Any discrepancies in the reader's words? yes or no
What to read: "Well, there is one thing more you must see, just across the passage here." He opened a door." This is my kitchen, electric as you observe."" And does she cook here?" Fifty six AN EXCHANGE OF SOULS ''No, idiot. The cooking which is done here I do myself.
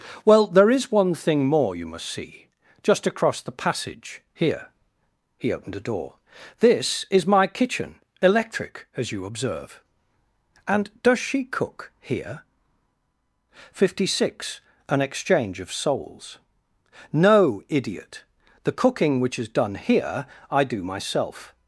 no